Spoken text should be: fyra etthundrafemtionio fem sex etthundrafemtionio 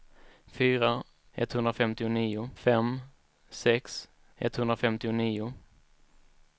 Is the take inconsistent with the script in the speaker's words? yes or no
no